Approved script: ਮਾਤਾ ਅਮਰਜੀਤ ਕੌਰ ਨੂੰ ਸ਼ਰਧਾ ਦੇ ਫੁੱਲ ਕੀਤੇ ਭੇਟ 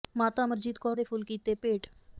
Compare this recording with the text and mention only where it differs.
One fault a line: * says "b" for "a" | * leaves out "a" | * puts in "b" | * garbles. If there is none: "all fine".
* leaves out "ਨੂੰ ਸ਼ਰਧਾ"